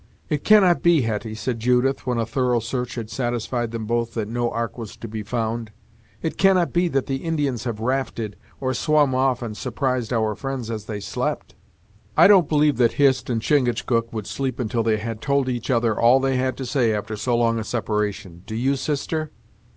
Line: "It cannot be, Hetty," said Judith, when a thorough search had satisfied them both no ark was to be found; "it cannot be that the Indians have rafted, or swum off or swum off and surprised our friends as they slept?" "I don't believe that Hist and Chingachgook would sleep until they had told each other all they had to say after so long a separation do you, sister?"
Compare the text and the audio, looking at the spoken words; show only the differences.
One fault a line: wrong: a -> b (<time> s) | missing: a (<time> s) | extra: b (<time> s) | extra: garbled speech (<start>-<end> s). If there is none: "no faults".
extra: that (4.2 s)
missing: or swum off (9.4 s)